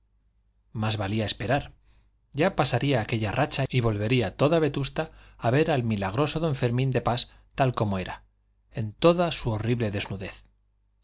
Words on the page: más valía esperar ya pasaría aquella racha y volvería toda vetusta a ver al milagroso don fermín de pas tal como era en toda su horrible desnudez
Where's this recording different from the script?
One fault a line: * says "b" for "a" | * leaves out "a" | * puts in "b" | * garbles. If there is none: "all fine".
all fine